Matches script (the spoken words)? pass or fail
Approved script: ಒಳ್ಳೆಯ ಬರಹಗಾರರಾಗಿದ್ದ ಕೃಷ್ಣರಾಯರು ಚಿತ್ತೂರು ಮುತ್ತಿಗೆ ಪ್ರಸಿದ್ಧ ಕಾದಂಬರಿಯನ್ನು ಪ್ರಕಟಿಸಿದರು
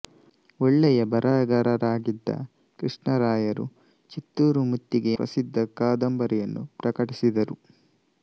pass